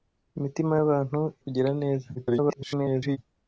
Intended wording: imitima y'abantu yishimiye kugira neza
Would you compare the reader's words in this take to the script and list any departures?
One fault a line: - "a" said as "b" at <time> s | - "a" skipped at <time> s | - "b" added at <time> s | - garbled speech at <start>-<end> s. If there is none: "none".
- "yishimiye" skipped at 1.2 s
- garbled speech at 2.2-3.2 s